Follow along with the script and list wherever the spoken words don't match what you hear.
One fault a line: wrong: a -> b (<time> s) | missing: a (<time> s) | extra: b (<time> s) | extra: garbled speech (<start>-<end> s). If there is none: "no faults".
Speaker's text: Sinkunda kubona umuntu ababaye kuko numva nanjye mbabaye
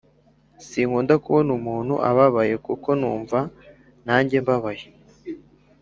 no faults